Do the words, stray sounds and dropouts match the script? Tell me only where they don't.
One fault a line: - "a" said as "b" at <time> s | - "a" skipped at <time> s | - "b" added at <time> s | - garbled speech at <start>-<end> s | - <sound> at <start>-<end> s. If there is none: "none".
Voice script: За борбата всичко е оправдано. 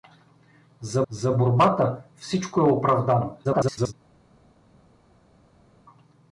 - "за" added at 1.1 s
- garbled speech at 3.4-3.9 s